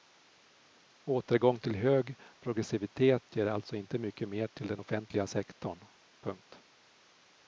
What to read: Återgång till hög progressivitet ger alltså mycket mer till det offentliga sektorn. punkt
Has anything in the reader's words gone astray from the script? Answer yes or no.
yes